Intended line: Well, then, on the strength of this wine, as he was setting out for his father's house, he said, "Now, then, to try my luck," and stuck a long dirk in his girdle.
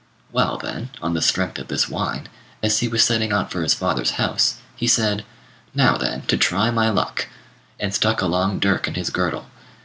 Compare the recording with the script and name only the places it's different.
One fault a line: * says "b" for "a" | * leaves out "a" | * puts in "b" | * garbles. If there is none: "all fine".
all fine